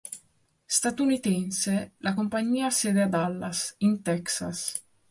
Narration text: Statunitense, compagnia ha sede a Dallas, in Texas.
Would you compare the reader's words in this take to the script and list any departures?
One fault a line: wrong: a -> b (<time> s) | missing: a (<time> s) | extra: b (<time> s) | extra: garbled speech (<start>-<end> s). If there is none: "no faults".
extra: la (2.0 s)